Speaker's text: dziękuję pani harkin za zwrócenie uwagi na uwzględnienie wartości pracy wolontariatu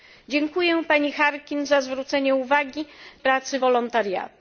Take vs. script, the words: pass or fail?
fail